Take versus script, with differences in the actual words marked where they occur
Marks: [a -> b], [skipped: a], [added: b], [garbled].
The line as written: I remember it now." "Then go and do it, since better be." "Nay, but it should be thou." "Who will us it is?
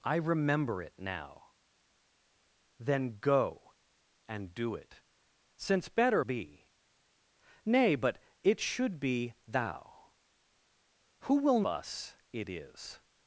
I remember it now." "Then go and do it, since better be." "Nay, but it should be thou." "Who will us it is?